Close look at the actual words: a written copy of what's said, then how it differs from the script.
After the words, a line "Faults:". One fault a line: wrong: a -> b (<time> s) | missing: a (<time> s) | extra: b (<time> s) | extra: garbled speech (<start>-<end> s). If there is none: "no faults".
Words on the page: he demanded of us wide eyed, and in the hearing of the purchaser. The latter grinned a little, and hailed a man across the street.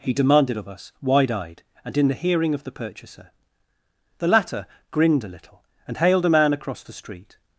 he demanded of us wide eyed, and in the hearing of the purchaser. The latter grinned a little, and hailed a man across the street.
Faults:
no faults